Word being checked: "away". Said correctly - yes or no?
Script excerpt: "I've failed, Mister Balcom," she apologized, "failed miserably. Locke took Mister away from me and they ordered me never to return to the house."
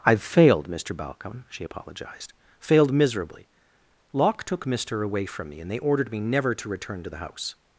yes